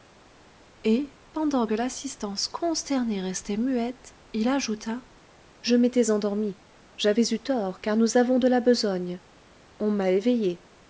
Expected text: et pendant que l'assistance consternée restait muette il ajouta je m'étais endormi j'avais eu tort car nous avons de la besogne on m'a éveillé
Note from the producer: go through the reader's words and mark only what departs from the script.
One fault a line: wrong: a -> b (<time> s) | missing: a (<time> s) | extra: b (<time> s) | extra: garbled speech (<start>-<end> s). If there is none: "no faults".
no faults